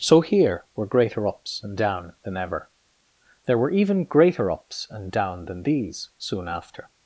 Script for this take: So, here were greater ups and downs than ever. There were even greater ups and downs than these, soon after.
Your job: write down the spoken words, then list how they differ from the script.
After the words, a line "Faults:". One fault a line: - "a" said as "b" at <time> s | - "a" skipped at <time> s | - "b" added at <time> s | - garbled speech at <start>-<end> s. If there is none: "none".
So, here were greater ups and down than ever. There were even greater ups and down than these, soon after.
Faults:
- "downs" said as "down" at 1.8 s
- "downs" said as "down" at 5.1 s